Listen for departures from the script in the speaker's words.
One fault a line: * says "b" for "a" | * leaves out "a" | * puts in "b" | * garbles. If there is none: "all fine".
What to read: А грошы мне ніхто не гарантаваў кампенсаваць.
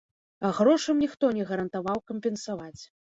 * leaves out "мне"